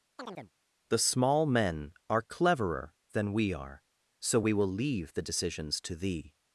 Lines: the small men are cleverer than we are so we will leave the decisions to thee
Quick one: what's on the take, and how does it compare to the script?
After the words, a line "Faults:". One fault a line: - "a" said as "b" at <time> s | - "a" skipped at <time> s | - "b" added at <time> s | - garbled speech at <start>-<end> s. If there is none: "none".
the small men are cleverer than we are so we will leave the decisions to thee
Faults:
none